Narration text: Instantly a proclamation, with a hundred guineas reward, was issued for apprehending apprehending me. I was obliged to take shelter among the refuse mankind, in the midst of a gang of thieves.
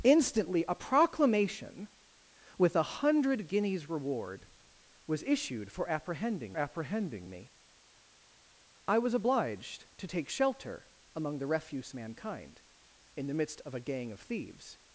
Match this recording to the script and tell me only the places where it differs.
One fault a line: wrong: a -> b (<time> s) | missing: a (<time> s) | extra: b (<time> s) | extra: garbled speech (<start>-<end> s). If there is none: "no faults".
no faults